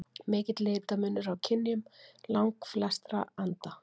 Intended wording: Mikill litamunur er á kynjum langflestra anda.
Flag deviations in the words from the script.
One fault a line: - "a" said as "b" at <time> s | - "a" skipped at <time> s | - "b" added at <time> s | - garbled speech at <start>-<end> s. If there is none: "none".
none